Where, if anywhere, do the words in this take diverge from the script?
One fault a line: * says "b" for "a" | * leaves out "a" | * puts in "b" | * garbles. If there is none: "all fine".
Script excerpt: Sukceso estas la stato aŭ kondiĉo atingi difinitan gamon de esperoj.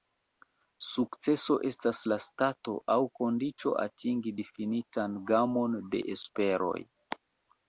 all fine